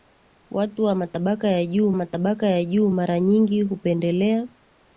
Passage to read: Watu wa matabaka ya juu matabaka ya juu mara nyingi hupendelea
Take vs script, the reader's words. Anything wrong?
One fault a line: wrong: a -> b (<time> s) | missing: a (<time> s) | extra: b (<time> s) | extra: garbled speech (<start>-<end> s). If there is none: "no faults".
no faults